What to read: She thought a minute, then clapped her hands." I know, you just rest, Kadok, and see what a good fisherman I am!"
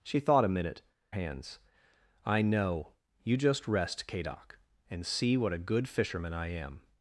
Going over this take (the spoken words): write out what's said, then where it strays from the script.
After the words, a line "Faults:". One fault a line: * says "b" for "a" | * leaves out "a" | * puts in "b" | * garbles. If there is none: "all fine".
She thought a minute, hands." I know, you just rest, Kadok, and see what a good fisherman I am!"
Faults:
* leaves out "then clapped her"